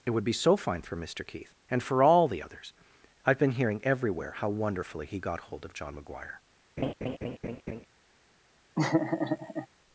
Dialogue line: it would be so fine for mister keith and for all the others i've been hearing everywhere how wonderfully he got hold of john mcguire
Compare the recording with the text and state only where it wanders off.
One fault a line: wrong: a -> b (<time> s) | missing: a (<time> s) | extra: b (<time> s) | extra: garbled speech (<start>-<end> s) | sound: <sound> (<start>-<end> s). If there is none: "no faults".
sound: laugh (6.8-7.9 s)
sound: laugh (8.8-9.7 s)